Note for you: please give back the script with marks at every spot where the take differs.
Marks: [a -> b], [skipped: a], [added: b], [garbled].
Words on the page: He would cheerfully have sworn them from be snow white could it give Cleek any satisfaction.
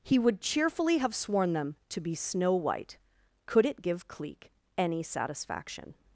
He would cheerfully have sworn them [from -> to] be snow white could it give Cleek any satisfaction.